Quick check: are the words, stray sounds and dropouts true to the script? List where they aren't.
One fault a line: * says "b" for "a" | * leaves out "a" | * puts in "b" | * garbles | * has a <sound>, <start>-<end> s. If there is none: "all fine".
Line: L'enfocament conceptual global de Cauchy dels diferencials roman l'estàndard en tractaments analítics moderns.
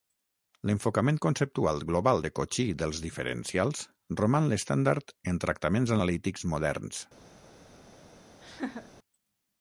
* has a laugh, 8.4-8.9 s